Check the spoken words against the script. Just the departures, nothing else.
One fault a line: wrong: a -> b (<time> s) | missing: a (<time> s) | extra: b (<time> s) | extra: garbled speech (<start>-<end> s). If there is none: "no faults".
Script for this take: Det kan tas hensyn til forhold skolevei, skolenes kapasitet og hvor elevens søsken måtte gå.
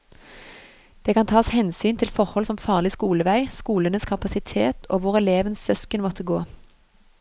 extra: som farlig (2.4 s)